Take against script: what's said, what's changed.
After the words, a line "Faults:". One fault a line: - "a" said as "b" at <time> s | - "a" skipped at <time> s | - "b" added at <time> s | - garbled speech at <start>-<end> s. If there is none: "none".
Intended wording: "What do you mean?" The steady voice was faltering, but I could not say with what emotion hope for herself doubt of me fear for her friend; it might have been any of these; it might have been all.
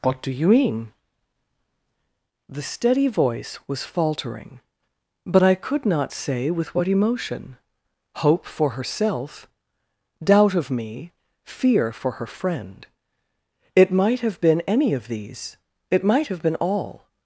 "What do you mean?" The steady voice was faltering, but I could not say with what emotion hope for herself doubt of me fear for her friend; it might have been any of these; it might have been all.
Faults:
none